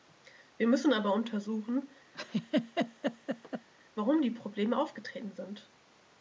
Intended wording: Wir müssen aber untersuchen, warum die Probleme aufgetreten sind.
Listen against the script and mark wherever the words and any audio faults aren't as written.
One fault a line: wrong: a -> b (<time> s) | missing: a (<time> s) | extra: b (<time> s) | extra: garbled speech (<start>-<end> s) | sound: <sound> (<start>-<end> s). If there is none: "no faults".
sound: laugh (2.1-3.7 s)